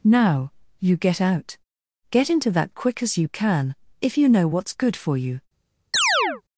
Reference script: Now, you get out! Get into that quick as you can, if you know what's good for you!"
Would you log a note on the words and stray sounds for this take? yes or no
yes